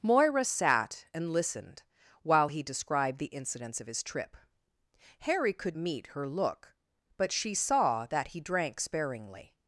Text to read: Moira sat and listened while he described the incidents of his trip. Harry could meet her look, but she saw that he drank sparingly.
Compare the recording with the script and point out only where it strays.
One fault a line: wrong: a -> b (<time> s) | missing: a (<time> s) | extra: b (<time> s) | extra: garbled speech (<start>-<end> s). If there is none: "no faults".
no faults